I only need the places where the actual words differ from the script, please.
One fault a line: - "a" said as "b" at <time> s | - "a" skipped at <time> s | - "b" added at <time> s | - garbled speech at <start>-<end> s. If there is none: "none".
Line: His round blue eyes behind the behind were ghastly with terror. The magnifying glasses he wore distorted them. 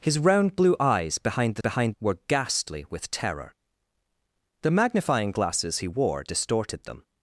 none